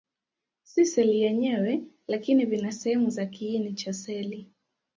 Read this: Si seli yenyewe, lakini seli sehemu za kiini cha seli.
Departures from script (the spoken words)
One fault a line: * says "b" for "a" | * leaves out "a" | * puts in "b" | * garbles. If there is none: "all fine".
* says "vina" for "seli"